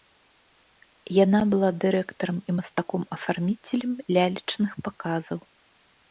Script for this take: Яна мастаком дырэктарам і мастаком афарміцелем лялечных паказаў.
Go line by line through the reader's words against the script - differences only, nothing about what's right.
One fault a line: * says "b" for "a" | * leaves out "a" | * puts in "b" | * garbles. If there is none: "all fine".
* says "была" for "мастаком"